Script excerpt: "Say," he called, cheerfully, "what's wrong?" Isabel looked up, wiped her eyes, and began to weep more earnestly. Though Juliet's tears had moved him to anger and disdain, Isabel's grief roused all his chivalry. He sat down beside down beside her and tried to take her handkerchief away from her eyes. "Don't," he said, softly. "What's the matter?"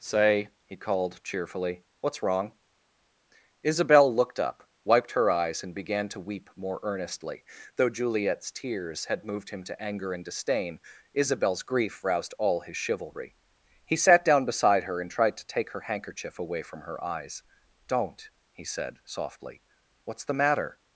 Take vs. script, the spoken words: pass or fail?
fail